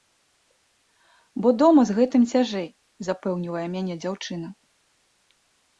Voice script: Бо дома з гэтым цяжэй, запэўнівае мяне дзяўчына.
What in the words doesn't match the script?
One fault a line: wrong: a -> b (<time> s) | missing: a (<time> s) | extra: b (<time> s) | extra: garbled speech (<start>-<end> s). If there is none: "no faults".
no faults